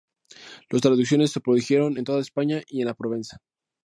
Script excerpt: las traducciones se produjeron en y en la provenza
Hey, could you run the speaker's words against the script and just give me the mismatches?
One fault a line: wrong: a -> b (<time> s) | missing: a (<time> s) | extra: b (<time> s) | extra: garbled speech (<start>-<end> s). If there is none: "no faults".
extra: toda españa (2.0 s)